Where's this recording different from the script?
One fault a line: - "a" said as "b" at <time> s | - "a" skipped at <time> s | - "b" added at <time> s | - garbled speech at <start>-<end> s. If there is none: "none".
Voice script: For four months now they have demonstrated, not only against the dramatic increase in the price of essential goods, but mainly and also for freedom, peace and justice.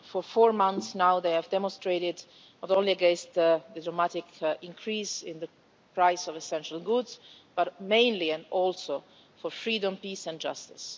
none